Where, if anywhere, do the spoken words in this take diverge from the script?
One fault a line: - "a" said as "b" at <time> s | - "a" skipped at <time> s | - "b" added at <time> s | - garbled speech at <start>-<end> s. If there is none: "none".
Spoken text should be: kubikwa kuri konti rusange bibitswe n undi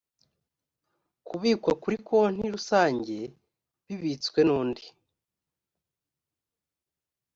none